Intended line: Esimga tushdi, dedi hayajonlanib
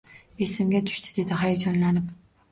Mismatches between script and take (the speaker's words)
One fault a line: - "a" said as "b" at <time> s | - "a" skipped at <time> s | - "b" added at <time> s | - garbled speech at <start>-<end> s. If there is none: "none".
none